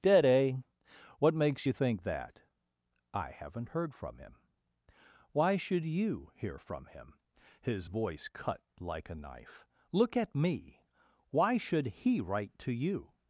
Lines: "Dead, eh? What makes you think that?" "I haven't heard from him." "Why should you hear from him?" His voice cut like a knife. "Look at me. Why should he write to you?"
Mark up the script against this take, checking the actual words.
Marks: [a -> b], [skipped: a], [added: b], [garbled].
"Dead, eh? What makes you think that?" "I haven't heard from him." "Why should you hear from him?" His voice cut like a knife. "Look at me. Why should he write to you?"